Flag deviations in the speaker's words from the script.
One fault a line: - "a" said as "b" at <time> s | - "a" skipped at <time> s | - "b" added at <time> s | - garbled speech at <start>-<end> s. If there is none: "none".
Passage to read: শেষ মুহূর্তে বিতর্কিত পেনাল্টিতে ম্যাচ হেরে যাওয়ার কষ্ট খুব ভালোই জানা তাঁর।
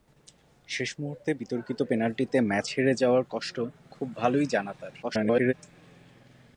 - garbled speech at 5.0-5.5 s